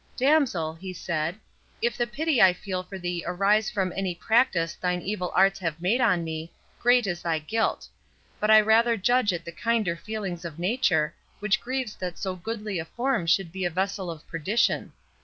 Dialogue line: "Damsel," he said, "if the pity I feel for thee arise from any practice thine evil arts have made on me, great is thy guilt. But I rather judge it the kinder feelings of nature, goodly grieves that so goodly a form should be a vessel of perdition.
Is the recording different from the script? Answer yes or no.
yes